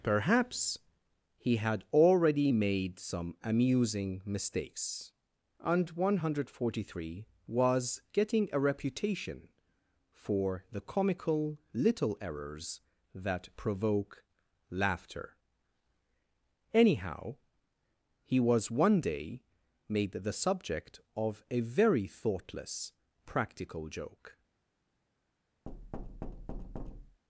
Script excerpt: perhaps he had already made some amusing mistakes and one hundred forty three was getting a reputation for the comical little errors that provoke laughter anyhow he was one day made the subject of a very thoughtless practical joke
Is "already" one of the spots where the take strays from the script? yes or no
no